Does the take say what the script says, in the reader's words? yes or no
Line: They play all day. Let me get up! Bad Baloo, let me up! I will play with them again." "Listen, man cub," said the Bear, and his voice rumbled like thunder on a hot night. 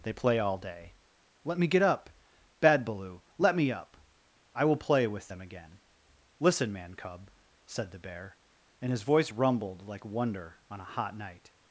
no